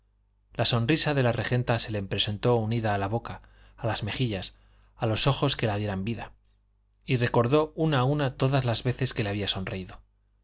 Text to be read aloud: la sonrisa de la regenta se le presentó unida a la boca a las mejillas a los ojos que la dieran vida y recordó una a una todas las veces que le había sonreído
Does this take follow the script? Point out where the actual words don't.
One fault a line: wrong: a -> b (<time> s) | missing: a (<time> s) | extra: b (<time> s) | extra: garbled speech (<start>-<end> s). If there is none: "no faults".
no faults